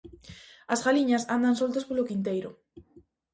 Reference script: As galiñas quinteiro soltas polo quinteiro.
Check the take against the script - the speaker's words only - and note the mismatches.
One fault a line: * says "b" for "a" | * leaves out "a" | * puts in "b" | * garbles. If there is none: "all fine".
* says "andan" for "quinteiro"